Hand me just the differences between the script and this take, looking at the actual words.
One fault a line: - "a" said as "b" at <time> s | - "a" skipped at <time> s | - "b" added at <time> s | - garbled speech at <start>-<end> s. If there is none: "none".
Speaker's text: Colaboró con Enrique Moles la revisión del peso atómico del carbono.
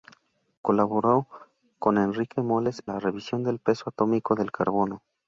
none